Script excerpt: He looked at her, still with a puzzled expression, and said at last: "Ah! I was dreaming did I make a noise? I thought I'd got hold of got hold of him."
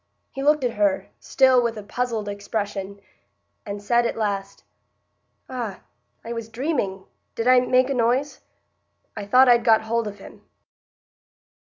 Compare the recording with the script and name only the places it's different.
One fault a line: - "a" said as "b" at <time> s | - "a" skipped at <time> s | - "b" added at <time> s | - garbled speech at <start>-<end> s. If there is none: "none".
- "got hold of" skipped at 10.2 s